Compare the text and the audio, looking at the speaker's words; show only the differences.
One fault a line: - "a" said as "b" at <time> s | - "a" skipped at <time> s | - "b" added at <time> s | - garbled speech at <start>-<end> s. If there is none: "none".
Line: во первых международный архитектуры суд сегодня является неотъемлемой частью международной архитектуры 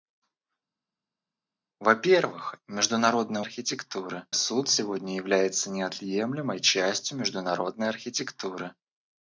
none